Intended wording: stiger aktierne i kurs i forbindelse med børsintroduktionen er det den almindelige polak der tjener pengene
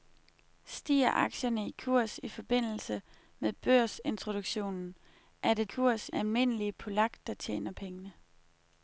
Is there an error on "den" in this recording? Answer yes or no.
yes